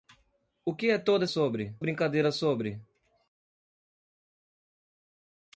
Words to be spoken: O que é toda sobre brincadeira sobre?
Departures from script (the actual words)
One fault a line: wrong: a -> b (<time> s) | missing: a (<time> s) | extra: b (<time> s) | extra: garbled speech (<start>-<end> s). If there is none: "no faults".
no faults